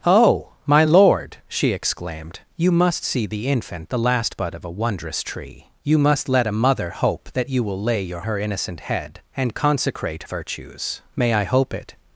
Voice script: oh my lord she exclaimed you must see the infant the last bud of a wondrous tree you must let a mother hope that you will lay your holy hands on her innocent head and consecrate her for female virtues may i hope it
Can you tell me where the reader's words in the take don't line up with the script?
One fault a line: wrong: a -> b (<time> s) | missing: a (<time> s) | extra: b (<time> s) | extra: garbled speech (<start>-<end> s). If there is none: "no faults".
missing: holy hands on (8.2 s)
missing: her for female (10.2 s)